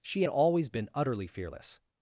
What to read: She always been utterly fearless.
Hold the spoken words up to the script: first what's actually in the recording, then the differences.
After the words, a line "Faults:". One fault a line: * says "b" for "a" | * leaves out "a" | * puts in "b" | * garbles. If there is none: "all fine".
She always been utterly fearless.
Faults:
all fine